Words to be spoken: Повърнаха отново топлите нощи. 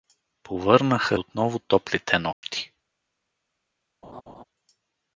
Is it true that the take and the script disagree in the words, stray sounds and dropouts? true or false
true